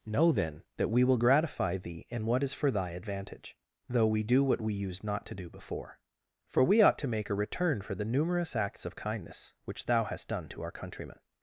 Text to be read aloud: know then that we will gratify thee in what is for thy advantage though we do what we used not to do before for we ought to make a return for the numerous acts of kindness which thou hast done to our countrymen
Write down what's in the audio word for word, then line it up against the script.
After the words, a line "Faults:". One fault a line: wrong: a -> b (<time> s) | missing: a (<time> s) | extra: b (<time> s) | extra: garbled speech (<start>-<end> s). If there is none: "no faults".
know then that we will gratify thee in what is for thy advantage though we do what we used not to do before for we ought to make a return for the numerous acts of kindness which thou hast done to our countrymen
Faults:
no faults